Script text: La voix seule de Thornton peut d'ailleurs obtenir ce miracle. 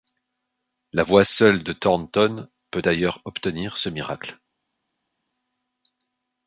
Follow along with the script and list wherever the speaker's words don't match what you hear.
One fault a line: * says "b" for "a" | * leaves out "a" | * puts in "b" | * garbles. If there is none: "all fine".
all fine